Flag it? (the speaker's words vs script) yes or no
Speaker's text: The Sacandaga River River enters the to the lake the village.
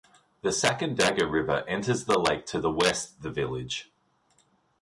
yes